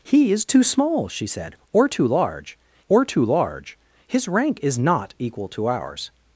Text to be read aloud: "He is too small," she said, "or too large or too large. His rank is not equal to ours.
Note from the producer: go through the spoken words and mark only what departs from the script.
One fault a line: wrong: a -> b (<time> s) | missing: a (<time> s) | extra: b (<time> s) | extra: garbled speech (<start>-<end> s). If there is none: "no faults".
no faults